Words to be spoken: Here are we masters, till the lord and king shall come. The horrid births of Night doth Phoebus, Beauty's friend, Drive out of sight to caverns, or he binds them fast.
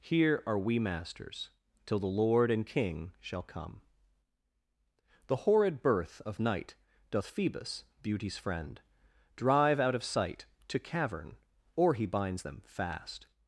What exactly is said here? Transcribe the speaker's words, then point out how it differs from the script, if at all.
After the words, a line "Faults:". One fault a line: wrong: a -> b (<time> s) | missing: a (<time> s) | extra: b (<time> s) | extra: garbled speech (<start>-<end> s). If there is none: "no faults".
Here are we masters, till the lord and king shall come. The horrid birth of Night doth Phoebus, Beauty's friend, Drive out of sight to cavern, or he binds them fast.
Faults:
wrong: births -> birth (5.8 s)
wrong: caverns -> cavern (10.8 s)